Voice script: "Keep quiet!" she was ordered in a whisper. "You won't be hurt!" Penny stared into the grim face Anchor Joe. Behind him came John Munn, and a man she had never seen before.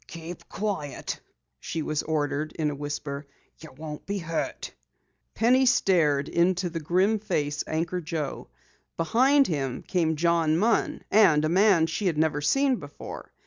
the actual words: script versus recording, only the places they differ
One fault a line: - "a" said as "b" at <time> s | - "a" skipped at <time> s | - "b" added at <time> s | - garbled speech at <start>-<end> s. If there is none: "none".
none